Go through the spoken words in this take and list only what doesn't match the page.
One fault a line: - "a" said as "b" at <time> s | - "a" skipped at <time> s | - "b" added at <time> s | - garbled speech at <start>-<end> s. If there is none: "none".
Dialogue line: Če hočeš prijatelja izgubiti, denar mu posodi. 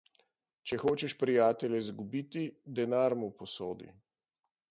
none